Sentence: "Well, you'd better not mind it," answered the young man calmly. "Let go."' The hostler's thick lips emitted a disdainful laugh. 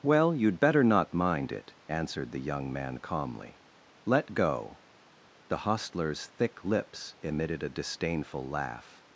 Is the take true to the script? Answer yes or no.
yes